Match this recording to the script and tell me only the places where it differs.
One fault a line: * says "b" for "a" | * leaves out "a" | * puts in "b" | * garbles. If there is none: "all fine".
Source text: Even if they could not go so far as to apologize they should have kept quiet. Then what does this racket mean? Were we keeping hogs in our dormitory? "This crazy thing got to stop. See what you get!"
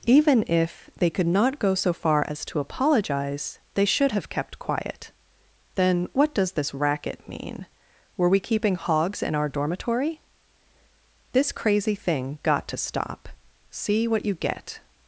all fine